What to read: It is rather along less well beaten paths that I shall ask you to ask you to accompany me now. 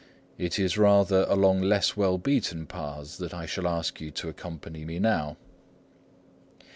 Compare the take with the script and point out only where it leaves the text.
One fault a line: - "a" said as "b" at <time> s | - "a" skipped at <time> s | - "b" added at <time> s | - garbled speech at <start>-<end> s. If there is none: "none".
- "ask you to" skipped at 4.3 s